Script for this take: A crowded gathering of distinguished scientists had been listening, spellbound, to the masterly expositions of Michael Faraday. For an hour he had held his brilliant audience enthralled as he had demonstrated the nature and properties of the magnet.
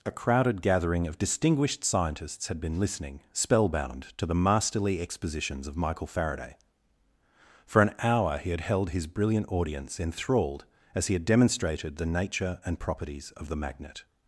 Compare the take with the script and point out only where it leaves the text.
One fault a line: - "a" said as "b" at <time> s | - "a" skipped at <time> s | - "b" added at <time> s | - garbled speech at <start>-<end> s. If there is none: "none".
none